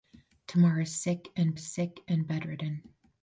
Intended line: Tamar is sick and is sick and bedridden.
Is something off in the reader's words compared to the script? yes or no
no